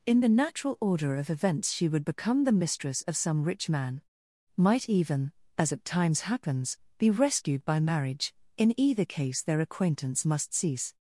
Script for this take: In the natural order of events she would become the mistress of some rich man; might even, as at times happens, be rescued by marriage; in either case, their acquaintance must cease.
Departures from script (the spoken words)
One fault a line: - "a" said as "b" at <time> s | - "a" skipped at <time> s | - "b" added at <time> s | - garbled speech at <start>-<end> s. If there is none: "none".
none